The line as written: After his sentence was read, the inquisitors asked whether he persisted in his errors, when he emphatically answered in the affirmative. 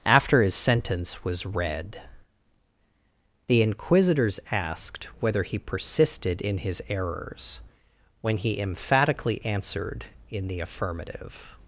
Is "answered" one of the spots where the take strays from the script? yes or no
no